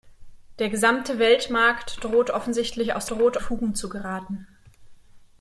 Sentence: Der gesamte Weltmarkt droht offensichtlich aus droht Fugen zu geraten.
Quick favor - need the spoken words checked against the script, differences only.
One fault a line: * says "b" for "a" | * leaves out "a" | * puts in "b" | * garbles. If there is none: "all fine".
all fine